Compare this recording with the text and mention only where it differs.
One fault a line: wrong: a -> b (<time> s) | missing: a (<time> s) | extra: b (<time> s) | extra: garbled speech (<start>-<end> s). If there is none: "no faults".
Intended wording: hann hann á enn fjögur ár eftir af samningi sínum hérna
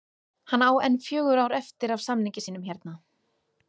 missing: hann (0.6 s)